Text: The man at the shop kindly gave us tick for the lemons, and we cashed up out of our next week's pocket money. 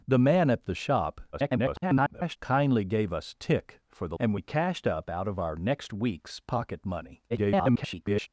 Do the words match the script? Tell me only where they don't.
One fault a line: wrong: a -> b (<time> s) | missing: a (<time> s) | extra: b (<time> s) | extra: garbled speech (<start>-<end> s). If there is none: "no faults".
extra: garbled speech (1.3-2.4 s)
missing: lemons (4.2 s)
extra: garbled speech (7.3-8.3 s)